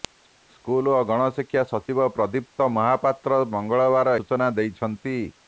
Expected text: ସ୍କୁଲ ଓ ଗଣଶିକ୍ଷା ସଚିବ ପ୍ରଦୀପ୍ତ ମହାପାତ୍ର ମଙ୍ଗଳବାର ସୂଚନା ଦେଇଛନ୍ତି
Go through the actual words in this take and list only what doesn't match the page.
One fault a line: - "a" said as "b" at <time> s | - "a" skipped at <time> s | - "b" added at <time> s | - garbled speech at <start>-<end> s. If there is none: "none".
none